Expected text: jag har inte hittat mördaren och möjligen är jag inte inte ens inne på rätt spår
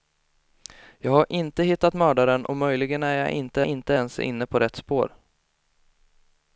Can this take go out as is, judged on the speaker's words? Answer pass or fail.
pass